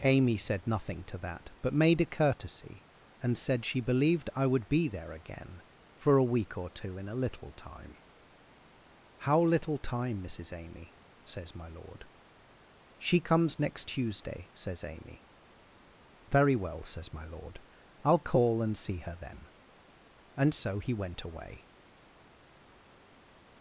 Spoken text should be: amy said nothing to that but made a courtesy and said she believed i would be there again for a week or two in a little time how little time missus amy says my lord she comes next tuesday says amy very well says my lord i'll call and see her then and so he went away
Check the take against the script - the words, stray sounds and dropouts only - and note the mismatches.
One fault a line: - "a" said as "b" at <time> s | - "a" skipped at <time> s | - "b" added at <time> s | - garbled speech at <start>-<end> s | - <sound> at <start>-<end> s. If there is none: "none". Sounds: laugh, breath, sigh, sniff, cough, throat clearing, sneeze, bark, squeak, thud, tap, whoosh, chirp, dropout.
none